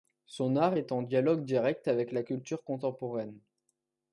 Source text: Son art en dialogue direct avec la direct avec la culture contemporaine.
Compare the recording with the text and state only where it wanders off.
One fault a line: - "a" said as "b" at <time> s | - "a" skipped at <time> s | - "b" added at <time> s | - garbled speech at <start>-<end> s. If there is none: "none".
- "est" added at 0.8 s
- "direct avec la" skipped at 2.2 s